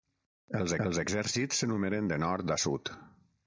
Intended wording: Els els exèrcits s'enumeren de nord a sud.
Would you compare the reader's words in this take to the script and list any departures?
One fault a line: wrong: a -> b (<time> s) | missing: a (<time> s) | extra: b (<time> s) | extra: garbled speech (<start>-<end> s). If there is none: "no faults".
no faults